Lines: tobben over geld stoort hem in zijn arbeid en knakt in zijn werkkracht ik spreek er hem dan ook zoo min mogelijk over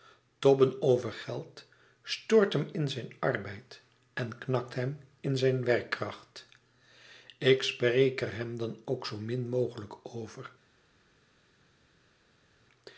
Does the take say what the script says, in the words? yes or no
no